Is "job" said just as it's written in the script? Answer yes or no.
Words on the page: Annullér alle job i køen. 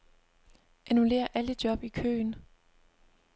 yes